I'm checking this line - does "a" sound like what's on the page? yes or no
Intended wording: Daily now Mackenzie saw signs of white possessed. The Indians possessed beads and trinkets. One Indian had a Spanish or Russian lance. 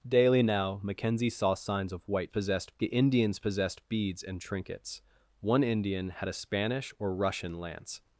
yes